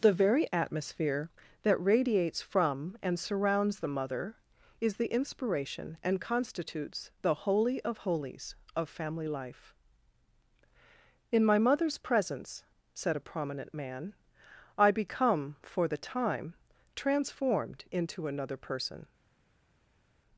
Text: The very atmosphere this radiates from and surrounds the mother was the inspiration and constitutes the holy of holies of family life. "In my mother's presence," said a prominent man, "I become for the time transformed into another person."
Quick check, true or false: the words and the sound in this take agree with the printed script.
false